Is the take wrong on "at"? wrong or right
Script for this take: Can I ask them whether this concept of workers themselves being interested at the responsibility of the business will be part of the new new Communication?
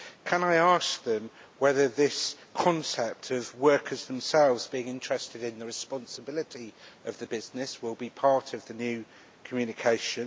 wrong